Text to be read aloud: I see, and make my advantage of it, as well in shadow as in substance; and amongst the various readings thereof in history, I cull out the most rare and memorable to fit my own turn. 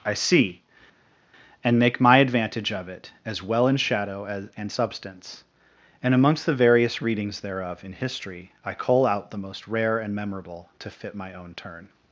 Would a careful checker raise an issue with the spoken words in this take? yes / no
yes